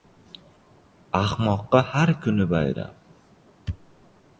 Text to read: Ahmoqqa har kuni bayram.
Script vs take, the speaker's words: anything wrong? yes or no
no